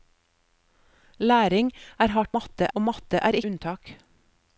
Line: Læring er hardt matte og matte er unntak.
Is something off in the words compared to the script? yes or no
no